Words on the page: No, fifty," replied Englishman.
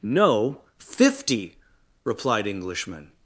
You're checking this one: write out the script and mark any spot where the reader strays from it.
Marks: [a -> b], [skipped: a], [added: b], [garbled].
No, fifty," replied Englishman.